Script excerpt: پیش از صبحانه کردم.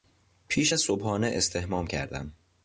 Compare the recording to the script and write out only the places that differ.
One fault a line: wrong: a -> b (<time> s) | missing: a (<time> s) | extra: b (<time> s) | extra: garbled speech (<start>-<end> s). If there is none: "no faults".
extra: استحمام (1.3 s)